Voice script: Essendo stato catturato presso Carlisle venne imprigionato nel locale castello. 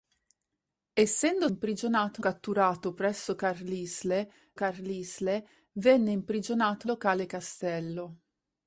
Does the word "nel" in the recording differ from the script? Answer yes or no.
yes